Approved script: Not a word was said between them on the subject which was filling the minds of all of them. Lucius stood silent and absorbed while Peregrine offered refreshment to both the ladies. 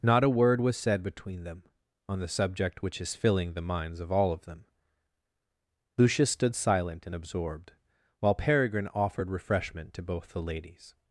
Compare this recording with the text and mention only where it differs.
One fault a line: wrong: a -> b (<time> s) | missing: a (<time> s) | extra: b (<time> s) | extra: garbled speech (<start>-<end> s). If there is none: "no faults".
wrong: was -> is (3.0 s)